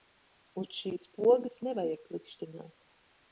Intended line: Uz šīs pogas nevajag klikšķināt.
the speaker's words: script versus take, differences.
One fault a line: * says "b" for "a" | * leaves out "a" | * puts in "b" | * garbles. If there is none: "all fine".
all fine